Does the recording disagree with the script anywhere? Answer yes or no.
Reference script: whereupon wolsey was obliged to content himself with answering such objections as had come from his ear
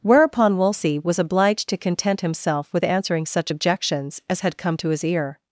yes